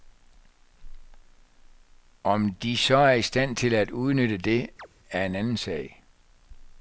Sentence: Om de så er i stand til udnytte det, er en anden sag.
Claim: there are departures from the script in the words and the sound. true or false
true